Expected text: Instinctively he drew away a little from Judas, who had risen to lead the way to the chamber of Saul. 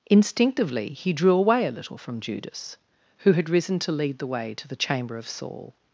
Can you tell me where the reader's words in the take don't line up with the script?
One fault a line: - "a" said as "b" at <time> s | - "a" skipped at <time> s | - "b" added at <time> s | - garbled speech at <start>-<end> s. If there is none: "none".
none